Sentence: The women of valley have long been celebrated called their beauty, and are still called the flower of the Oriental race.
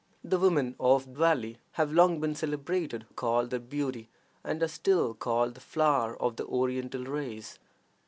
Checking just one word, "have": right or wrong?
right